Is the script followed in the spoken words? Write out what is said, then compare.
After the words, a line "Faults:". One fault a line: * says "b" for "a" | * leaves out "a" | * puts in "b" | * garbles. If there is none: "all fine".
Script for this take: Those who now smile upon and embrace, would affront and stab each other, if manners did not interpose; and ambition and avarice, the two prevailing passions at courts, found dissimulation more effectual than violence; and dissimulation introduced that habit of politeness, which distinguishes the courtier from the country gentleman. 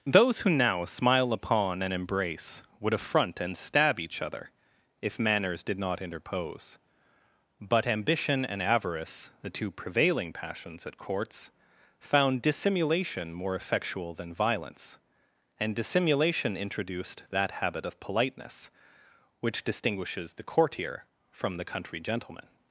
Those who now smile upon and embrace, would affront and stab each other, if manners did not interpose; but ambition and avarice, the two prevailing passions at courts, found dissimulation more effectual than violence; and dissimulation introduced that habit of politeness, which distinguishes the courtier from the country gentleman.
Faults:
* says "but" for "and"